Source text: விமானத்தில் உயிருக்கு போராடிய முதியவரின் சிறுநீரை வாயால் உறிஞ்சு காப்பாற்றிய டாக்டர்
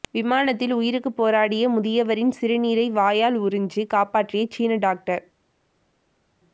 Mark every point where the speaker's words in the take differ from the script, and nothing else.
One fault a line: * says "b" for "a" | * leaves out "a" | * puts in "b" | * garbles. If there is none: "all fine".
* puts in "சீன"